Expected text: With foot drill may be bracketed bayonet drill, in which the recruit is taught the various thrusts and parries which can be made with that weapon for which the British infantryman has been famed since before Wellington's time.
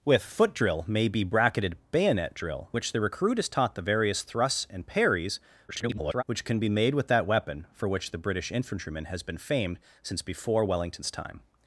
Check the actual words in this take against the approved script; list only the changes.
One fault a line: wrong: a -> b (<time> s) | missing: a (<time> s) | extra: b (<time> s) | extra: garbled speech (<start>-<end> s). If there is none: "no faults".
missing: in (2.7 s)
extra: garbled speech (5.7-6.2 s)